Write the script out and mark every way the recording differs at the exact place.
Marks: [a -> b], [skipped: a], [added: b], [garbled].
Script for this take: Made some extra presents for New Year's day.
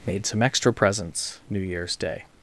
Made some extra presents [skipped: for] New Year's day.